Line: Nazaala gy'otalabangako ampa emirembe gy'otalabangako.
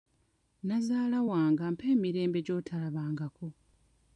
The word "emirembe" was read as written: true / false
true